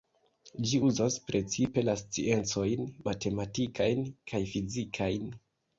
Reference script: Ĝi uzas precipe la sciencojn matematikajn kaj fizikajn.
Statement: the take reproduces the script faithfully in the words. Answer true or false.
true